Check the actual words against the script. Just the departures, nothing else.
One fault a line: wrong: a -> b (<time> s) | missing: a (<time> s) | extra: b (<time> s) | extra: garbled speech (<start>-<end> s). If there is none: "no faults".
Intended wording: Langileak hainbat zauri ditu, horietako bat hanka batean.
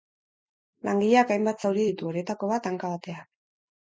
no faults